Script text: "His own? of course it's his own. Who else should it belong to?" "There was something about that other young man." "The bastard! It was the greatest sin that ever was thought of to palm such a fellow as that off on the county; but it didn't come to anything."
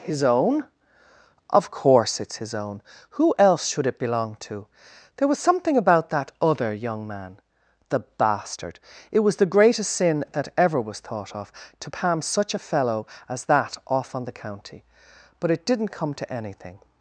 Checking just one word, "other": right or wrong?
right